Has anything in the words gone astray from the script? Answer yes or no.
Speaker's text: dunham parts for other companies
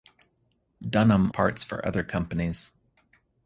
no